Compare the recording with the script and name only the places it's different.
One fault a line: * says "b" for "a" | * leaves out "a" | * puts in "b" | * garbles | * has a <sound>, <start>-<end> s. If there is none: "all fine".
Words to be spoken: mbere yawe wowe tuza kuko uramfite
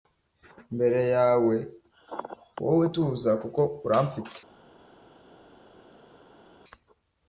all fine